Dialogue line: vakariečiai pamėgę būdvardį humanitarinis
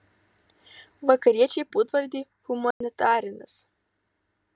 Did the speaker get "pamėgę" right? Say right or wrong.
wrong